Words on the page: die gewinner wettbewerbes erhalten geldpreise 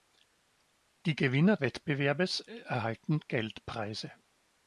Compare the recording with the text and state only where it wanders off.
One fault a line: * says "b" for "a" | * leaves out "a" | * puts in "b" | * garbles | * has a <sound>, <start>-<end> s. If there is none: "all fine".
all fine